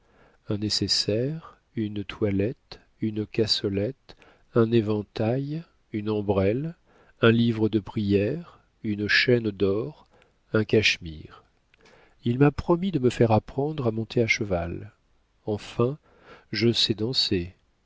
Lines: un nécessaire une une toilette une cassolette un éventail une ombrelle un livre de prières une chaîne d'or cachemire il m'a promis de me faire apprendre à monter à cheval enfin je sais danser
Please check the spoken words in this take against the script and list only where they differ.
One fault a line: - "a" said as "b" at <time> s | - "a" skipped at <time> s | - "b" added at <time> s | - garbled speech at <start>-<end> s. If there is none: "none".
- "une" skipped at 2.0 s
- "un" added at 10.5 s